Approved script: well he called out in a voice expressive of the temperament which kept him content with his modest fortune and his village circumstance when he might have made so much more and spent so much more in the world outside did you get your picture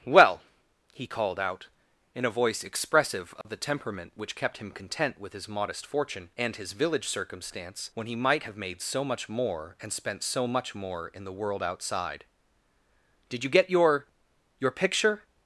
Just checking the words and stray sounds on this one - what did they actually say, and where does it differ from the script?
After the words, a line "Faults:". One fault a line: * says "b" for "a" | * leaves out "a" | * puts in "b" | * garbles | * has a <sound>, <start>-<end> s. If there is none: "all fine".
well he called out in a voice expressive of the temperament which kept him content with his modest fortune and his village circumstance when he might have made so much more and spent so much more in the world outside did you get your your picture
Faults:
* has a dropout, 3.4-3.4 s
* puts in "your"